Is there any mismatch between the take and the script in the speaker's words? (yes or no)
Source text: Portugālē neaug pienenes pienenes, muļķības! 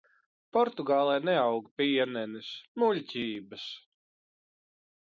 yes